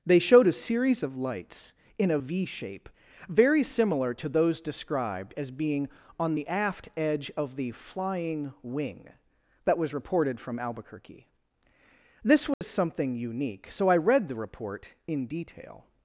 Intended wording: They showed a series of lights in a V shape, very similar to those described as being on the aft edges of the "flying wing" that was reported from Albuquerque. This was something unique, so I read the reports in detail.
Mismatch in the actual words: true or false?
true